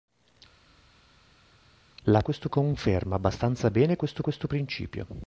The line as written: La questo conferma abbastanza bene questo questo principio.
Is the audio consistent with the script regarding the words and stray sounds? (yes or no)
yes